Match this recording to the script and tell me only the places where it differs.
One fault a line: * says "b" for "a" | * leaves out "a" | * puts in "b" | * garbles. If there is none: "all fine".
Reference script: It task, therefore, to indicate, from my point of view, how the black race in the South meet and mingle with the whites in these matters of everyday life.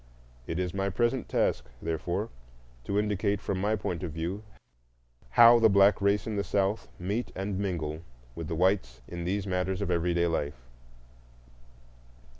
* puts in "is my present"